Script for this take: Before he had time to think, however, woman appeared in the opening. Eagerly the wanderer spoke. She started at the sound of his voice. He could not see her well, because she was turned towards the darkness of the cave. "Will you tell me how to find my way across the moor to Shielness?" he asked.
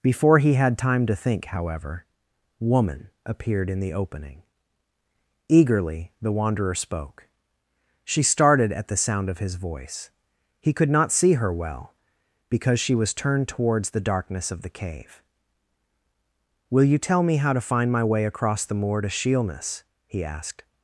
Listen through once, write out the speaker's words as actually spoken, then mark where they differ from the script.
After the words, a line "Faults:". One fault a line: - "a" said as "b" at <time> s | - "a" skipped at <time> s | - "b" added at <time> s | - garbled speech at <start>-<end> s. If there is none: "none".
Before he had time to think, however, woman appeared in the opening. Eagerly the wanderer spoke. She started at the sound of his voice. He could not see her well, because she was turned towards the darkness of the cave. "Will you tell me how to find my way across the moor to Shielness?" he asked.
Faults:
none